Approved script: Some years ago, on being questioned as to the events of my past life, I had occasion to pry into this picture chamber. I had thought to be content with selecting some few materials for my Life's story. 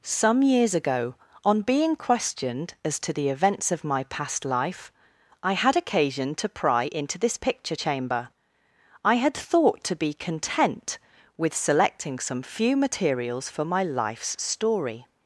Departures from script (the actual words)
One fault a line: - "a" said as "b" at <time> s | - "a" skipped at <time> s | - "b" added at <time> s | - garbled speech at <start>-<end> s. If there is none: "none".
none